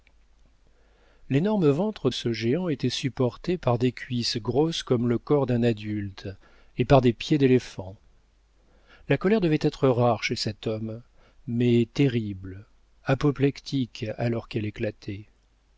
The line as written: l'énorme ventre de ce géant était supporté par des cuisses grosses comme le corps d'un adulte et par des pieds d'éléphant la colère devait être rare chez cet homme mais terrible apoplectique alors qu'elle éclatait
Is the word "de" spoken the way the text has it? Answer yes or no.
no